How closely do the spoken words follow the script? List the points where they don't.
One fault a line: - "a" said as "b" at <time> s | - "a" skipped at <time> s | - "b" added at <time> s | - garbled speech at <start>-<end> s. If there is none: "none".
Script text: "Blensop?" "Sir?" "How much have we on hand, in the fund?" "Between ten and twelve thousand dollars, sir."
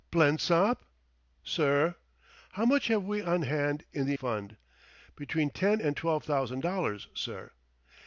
none